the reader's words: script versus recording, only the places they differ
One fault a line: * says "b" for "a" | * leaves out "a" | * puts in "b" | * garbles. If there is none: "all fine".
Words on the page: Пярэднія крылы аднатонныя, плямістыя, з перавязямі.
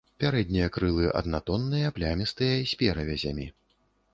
all fine